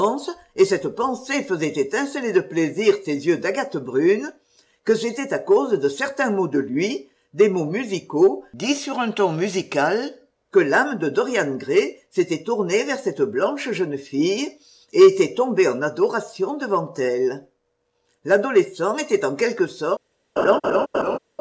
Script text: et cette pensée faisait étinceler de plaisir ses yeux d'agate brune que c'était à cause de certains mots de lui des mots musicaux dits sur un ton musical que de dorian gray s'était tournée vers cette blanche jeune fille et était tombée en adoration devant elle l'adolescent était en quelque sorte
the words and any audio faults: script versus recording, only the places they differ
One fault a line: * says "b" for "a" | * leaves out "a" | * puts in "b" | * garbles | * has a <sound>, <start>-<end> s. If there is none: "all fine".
* puts in "l'âme"
* has a laugh, 20.4-21.2 s